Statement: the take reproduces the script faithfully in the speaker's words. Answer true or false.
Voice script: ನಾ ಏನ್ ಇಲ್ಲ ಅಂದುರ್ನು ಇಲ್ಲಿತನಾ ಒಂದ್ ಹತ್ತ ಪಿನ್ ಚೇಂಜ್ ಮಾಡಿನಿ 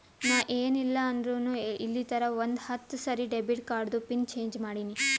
false